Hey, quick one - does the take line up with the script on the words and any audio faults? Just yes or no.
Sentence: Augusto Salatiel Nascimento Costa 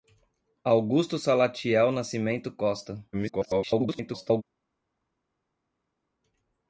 no